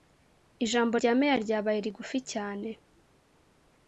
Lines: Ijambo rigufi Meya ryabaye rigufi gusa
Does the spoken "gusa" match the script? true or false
false